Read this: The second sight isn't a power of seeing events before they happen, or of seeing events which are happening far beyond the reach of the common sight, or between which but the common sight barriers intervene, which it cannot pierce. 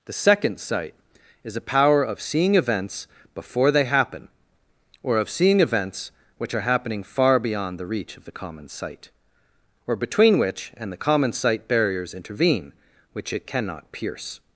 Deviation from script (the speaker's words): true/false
true